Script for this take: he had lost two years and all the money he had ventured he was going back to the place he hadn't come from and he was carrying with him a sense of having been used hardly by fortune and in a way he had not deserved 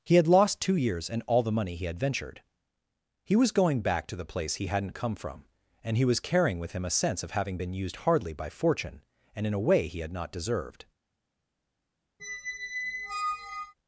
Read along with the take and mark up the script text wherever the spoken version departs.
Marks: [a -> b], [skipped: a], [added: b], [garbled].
he had lost two years and all the money he had ventured he was going back to the place he hadn't come from and he was carrying with him a sense of having been used hardly by fortune and in a way he had not deserved